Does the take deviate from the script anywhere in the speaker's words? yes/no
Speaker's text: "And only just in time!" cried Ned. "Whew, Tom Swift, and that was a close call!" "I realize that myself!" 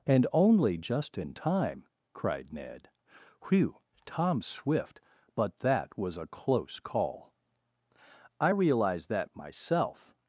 yes